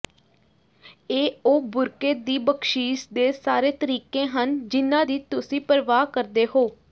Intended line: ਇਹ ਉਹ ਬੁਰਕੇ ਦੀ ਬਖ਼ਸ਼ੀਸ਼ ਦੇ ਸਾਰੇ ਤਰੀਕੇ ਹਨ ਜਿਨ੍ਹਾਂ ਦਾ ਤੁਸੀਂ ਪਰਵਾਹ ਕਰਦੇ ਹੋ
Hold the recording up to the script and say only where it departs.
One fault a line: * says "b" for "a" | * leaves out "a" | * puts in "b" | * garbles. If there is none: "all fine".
* says "ਦੀ" for "ਦਾ"